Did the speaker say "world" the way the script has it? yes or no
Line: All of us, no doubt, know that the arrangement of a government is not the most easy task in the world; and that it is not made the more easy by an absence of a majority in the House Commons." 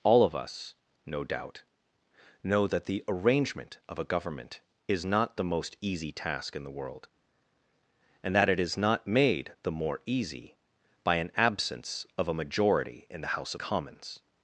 yes